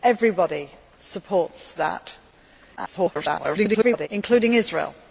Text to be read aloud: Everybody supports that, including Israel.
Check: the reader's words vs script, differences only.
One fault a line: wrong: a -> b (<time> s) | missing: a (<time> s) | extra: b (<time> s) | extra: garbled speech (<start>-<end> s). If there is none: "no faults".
extra: garbled speech (2.8-4.1 s)